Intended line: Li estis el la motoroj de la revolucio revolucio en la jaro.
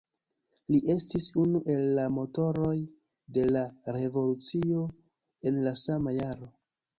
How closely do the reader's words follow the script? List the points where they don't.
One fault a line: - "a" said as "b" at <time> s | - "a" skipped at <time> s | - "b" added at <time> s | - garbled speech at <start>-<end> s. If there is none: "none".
- "unu" added at 1.4 s
- "revolucio" skipped at 4.9 s
- "sama" added at 5.8 s